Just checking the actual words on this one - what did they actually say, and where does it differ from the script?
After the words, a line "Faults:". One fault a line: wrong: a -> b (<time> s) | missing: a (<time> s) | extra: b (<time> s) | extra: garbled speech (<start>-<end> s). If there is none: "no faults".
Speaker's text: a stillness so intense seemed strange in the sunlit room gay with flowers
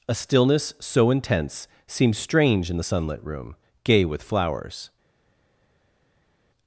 a stillness so intense seemed strange in the sunlit room gay with flowers
Faults:
no faults